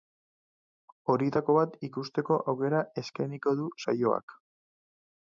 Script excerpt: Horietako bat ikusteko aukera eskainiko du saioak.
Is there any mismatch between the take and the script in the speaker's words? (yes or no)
no